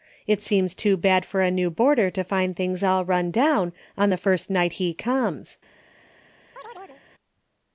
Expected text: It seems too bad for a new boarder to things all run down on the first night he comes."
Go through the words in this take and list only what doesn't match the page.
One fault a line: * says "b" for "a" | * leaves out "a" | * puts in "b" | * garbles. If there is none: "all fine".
* puts in "find"